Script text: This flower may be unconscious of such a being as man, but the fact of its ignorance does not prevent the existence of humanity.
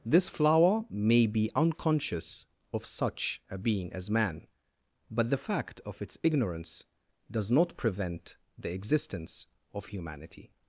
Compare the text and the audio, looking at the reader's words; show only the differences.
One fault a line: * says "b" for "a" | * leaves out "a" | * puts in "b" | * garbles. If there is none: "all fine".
all fine